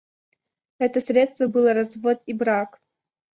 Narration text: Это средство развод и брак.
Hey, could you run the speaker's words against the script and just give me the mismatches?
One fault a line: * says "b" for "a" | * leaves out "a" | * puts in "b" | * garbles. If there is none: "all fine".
* puts in "было"